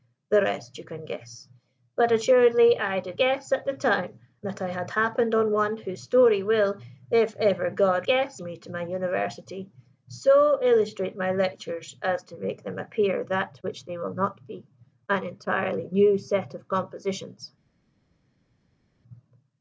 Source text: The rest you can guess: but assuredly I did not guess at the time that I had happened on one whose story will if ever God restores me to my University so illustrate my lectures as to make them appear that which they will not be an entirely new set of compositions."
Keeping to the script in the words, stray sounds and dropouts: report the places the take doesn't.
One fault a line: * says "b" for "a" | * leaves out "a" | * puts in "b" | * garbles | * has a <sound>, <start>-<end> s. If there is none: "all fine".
* leaves out "not"
* says "guess" for "restores"